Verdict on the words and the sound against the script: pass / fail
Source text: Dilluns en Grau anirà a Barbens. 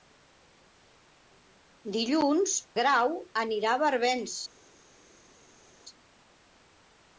fail